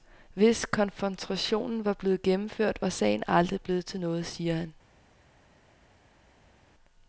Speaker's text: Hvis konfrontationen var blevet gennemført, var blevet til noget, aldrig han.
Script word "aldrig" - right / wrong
wrong